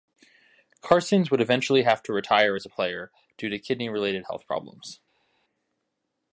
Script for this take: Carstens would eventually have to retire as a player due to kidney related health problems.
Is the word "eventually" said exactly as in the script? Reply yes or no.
yes